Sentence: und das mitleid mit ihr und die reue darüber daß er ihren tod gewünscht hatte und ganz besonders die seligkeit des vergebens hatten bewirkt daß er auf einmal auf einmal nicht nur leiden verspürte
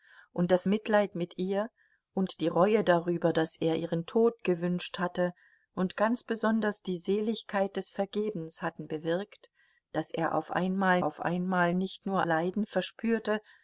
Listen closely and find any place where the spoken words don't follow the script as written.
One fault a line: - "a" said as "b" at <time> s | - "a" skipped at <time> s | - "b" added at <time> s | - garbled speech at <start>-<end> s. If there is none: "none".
none